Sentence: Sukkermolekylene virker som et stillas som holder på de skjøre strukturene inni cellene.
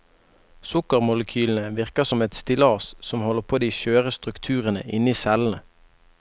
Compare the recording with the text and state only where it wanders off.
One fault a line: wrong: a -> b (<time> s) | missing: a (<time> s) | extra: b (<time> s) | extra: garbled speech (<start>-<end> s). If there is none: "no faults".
no faults